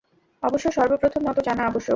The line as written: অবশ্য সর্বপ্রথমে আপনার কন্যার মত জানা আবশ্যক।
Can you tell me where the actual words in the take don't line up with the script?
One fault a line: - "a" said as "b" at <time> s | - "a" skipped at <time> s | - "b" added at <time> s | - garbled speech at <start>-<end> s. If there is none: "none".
- "আপনার কন্যার" skipped at 1.3 s